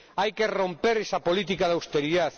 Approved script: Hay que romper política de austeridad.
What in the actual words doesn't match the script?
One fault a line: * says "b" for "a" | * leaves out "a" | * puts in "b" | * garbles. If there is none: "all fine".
* puts in "esa"